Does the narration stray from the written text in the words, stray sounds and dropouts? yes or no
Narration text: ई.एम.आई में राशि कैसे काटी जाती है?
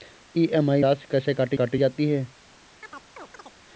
yes